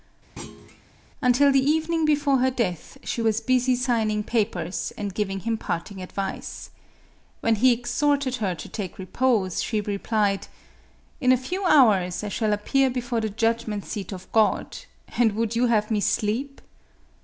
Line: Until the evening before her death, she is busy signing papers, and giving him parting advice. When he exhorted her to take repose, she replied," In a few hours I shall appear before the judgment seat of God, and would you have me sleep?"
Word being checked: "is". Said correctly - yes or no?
no